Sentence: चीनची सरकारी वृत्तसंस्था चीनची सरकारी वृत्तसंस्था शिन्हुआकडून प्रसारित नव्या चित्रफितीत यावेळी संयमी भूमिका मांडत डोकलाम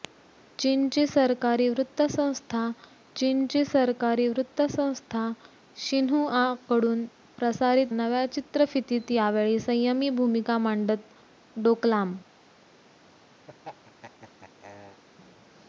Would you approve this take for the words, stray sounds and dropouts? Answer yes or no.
no